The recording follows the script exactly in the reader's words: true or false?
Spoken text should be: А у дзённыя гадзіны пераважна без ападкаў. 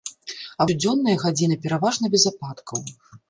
true